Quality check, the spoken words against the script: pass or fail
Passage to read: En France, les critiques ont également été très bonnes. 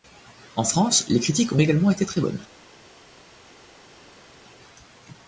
pass